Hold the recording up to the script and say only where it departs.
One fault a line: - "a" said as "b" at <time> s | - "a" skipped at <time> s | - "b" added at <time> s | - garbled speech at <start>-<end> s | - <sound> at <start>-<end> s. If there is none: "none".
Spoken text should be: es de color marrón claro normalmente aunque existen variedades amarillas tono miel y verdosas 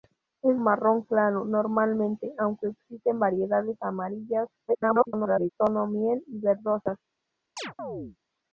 - "de color" skipped at 0.6 s
- garbled speech at 4.7-5.5 s
- chirp at 7.6-8.2 s